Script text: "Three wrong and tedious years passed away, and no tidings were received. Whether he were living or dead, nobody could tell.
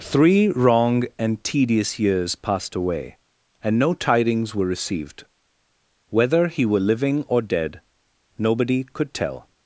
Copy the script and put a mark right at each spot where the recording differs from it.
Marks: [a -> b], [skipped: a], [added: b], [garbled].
"Three wrong and tedious years passed away, and no tidings were received. Whether he were living or dead, nobody could tell.